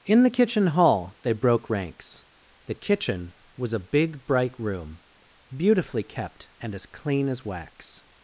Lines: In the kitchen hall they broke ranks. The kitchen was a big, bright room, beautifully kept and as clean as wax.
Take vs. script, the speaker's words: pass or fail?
pass